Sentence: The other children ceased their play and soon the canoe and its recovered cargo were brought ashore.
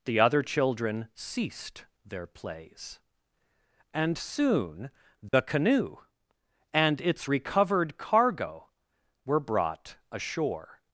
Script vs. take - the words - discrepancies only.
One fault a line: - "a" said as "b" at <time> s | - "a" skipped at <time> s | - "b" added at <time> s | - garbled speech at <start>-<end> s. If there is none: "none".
- "play" said as "plays" at 2.3 s